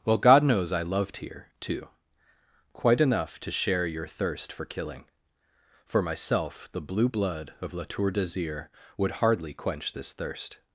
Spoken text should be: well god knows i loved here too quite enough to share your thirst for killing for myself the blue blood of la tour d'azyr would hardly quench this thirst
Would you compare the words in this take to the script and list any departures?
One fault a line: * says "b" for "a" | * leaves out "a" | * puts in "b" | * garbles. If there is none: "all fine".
all fine